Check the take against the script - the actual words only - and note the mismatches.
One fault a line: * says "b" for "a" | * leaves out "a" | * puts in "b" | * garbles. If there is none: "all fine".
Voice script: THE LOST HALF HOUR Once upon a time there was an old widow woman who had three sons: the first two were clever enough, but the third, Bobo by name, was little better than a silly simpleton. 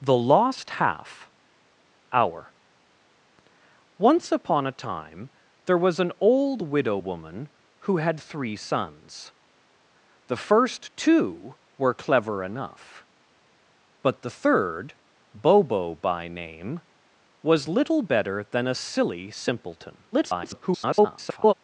* garbles